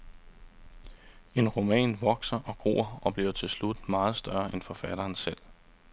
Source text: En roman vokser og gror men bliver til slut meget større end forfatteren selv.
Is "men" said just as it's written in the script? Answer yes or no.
no